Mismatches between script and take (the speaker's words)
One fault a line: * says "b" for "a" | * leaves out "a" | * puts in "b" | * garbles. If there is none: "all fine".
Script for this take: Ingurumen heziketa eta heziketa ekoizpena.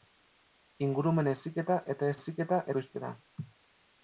all fine